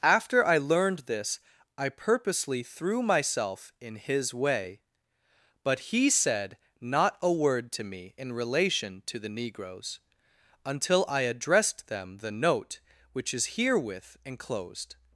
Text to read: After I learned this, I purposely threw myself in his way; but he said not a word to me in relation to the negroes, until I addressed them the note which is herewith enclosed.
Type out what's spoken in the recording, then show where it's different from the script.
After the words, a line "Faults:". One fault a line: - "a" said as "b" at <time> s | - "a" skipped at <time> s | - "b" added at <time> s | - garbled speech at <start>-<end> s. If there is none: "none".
After I learned this, I purposely threw myself in his way; but he said not a word to me in relation to the negroes, until I addressed them the note which is herewith enclosed.
Faults:
none